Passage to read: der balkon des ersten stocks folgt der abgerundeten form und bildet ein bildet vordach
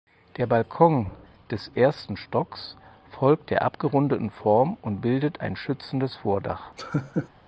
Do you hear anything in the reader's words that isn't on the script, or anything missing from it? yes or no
yes